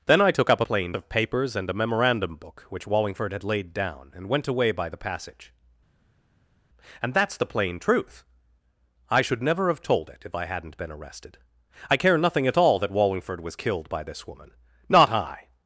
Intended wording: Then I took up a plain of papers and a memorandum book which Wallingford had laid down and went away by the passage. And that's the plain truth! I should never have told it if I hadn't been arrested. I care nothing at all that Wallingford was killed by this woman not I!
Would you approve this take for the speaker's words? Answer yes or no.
yes